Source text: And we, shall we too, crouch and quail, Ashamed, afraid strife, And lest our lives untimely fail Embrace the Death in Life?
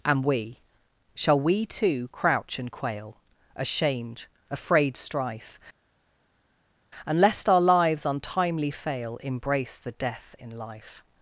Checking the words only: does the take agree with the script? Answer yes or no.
yes